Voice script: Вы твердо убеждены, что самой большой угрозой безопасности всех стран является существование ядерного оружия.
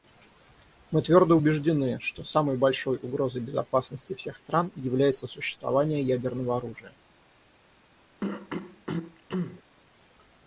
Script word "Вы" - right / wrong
wrong